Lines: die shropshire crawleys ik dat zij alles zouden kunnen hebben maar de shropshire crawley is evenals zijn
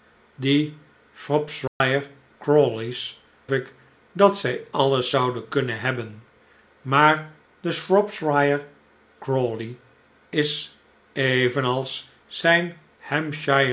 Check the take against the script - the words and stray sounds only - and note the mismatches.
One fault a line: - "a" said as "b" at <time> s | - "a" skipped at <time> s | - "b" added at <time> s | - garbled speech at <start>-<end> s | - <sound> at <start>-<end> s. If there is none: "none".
- dropout at 1.7-1.8 s